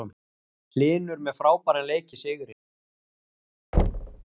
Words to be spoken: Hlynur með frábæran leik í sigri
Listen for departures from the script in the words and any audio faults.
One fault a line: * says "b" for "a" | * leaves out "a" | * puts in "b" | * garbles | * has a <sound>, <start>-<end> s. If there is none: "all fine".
* has a thud, 3.7-4.2 s